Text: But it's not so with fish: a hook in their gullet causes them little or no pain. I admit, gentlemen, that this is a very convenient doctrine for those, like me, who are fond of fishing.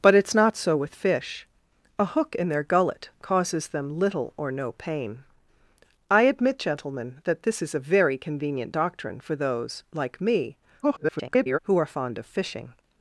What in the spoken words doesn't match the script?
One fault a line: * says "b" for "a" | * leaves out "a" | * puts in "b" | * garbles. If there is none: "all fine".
* garbles